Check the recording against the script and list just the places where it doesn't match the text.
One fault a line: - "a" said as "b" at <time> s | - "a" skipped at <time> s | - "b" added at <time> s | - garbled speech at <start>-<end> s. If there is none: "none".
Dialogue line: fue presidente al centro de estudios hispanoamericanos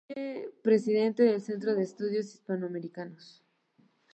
- "al" said as "del" at 1.2 s